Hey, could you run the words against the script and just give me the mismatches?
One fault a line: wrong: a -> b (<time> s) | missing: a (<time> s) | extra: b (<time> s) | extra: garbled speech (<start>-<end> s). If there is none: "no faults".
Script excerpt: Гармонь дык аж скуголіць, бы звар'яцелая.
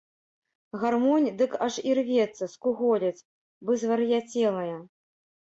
extra: ірвецца (1.9 s)